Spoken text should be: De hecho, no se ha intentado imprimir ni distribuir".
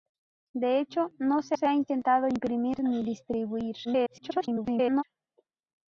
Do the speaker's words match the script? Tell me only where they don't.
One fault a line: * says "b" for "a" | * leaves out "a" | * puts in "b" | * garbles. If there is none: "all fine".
* puts in "se"
* garbles